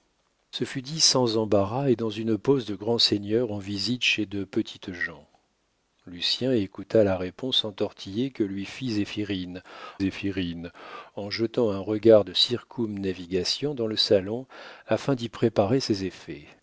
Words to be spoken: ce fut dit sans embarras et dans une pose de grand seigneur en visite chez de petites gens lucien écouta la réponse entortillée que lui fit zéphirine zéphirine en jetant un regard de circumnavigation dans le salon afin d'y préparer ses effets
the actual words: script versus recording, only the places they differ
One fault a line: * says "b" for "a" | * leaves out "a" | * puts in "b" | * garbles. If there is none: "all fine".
all fine